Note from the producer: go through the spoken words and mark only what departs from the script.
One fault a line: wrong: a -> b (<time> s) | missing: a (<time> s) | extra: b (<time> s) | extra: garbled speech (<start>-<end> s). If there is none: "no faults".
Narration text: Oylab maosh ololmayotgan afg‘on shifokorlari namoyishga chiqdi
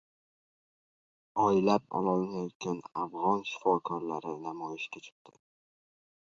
missing: maosh (1.8 s)